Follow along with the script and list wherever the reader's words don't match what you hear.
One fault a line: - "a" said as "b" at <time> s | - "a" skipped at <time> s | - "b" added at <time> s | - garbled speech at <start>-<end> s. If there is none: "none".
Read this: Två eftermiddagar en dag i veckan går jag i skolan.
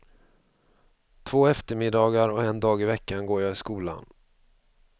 - "och" added at 2.3 s